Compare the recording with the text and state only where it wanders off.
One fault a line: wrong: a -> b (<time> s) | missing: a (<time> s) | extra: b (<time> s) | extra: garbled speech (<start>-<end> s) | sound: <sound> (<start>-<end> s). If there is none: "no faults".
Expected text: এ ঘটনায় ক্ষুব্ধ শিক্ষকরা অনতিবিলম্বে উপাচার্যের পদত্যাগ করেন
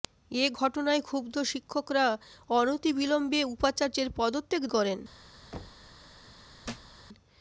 sound: thud (5.5-5.9 s)
sound: thud (6.6-7.0 s)